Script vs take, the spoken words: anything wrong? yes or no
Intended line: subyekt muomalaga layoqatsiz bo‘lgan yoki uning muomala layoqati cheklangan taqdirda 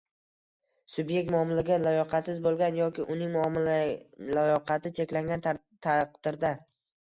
no